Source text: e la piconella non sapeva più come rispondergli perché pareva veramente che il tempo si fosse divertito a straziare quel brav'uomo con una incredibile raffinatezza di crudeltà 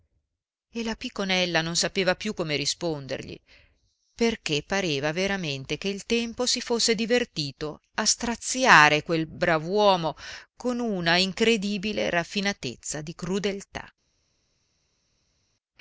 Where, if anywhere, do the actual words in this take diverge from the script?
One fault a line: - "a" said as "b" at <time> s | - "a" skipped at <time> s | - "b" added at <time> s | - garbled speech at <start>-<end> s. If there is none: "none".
none